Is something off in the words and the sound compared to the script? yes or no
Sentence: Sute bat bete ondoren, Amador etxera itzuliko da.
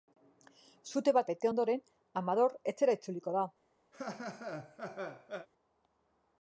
yes